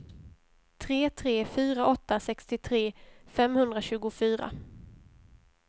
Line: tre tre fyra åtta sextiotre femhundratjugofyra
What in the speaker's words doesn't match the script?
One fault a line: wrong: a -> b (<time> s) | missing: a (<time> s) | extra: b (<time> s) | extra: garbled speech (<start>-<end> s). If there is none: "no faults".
no faults